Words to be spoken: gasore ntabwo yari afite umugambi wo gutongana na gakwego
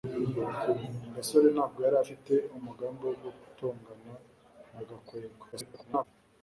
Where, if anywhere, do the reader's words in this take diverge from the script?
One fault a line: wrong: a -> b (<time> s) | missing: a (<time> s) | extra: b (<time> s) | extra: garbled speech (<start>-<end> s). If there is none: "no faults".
extra: garbled speech (5.5-6.0 s)